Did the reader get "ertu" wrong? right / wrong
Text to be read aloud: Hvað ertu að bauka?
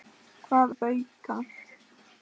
wrong